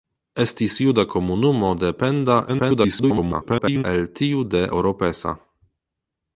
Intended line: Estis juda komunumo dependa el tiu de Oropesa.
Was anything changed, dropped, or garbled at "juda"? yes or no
no